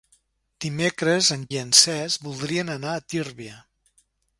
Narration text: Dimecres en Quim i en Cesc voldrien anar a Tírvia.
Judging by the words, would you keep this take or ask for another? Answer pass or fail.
fail